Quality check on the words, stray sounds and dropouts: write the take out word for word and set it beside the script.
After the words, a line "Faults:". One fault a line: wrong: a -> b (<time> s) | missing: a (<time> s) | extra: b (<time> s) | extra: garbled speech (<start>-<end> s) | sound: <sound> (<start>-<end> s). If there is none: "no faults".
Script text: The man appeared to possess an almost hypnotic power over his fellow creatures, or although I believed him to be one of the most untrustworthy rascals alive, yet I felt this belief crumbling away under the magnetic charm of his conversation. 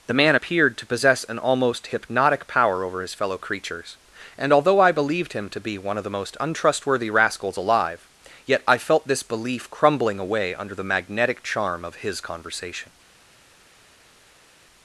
The man appeared to possess an almost hypnotic power over his fellow creatures, and although I believed him to be one of the most untrustworthy rascals alive, yet I felt this belief crumbling away under the magnetic charm of his conversation.
Faults:
wrong: or -> and (4.4 s)